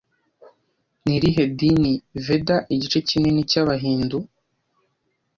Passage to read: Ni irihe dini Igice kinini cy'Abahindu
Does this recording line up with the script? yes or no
no